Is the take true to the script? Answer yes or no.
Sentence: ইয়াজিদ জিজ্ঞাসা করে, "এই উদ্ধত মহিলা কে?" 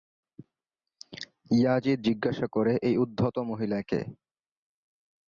yes